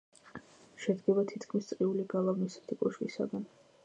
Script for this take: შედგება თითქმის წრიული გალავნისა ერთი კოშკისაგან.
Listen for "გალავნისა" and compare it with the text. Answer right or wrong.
right